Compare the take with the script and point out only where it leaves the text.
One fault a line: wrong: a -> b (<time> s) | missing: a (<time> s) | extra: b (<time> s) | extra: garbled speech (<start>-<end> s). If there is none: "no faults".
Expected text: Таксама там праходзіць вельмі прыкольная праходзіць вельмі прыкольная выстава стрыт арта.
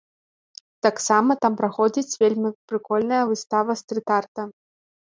missing: праходзіць вельмі прыкольная (3.2 s)